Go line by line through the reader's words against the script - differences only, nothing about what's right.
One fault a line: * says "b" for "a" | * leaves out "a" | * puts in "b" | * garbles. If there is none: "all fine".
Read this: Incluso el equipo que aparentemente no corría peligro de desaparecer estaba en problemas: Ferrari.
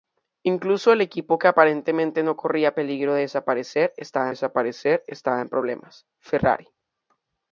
* puts in "desaparecer estaba"